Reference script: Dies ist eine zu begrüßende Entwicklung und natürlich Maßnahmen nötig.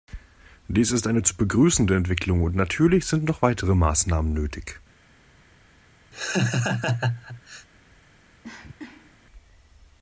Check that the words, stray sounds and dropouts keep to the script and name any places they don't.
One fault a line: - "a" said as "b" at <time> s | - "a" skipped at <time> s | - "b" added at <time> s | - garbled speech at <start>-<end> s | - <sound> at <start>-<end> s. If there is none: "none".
- "sind noch weitere" added at 3.0 s
- laugh at 6.1-7.7 s
- cough at 8.4-9.2 s